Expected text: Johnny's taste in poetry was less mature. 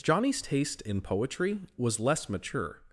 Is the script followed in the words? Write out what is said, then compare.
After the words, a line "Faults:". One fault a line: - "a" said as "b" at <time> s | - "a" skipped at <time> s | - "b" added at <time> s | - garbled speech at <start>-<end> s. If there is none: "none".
Johnny's taste in poetry was less mature.
Faults:
none